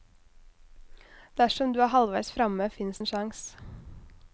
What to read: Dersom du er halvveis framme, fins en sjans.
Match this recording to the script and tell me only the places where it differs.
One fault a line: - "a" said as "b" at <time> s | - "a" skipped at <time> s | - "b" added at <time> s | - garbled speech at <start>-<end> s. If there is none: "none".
none